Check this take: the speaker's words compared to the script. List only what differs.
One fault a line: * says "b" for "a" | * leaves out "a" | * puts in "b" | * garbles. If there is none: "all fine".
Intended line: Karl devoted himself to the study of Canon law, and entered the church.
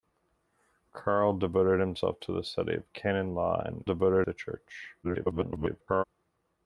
* says "devoted" for "entered"
* garbles